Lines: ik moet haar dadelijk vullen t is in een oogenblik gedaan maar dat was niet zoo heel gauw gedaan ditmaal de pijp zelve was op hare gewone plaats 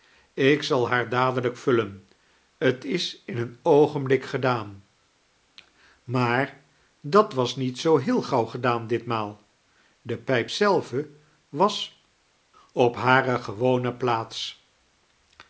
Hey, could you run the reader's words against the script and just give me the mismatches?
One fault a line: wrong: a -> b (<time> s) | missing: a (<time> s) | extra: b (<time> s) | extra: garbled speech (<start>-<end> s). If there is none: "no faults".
wrong: moet -> zal (0.6 s)